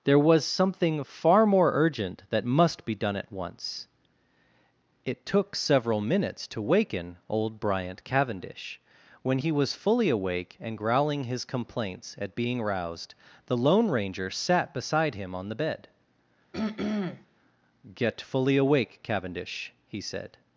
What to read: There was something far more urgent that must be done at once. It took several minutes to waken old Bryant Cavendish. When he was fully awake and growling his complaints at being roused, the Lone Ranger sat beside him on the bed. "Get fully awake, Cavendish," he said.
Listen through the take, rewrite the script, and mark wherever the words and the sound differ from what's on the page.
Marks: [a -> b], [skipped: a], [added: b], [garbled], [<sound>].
There was something far more urgent that must be done at once. It took several minutes to waken old Bryant Cavendish. When he was fully awake and growling his complaints at being roused, the Lone Ranger sat beside him on the bed. [throat clearing] "Get fully awake, Cavendish," he said.